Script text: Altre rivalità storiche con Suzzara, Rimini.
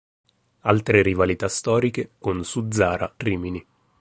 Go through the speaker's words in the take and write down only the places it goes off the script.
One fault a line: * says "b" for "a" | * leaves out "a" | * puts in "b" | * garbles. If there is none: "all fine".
all fine